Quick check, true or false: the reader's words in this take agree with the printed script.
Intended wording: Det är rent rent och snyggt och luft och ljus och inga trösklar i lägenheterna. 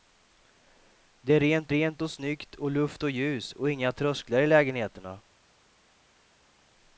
true